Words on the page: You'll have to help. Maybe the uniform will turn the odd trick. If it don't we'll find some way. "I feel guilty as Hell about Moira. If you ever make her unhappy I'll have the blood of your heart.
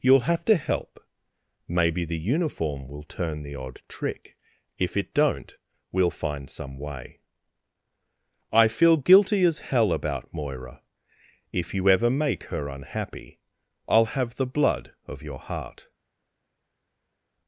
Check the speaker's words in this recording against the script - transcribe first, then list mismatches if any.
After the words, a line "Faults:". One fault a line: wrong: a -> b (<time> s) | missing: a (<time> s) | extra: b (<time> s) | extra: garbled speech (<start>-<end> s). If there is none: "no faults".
You'll have to help. Maybe the uniform will turn the odd trick. If it don't we'll find some way. "I feel guilty as Hell about Moira. If you ever make her unhappy I'll have the blood of your heart.
Faults:
no faults